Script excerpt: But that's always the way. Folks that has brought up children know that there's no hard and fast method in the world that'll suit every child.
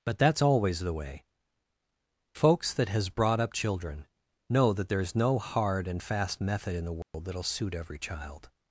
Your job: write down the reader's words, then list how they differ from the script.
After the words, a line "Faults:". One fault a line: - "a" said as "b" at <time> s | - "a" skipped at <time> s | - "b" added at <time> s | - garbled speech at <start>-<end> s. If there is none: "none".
But that's always the way. Folks that has brought up children know that there's no hard and fast method in the world that'll suit every child.
Faults:
none